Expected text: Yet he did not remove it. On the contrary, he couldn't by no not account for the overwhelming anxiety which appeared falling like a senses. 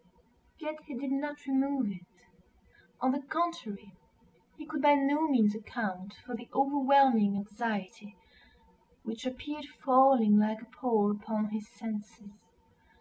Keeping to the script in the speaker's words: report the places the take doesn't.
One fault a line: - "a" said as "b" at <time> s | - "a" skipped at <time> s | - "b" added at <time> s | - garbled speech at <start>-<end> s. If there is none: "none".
- "couldn't" said as "could" at 4.7 s
- "not" said as "means" at 5.3 s
- "pall upon his" added at 10.8 s